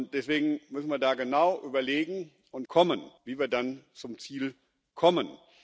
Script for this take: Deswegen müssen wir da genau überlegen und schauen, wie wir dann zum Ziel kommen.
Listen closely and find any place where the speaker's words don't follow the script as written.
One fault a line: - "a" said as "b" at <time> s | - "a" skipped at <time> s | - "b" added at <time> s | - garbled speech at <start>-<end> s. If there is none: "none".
- "schauen" said as "kommen" at 2.7 s